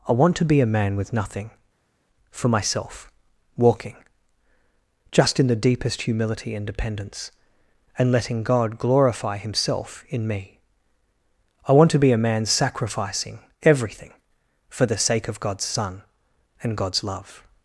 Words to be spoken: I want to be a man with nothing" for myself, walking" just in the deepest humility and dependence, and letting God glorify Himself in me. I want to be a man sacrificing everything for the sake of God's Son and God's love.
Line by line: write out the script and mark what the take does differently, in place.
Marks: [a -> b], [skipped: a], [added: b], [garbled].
I want to be a man with nothing" for myself, walking" just in the deepest humility and dependence, and letting God glorify Himself in me. I want to be a man sacrificing everything for the sake of God's Son and God's love.